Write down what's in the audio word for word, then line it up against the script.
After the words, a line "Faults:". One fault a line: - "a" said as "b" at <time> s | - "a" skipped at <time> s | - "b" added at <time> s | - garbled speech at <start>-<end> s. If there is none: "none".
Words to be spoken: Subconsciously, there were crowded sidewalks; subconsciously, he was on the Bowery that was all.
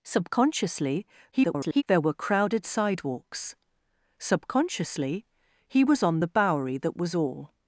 Subconsciously, [garbled] there were crowded sidewalks; subconsciously, he was on the Bowery that was all.
Faults:
- garbled speech at 1.3-1.8 s